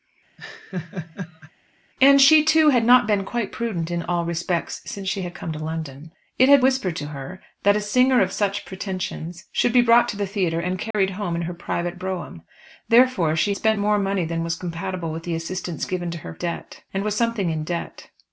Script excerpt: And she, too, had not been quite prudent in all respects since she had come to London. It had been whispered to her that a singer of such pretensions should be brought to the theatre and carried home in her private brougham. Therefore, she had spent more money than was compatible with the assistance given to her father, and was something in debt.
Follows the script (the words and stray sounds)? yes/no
no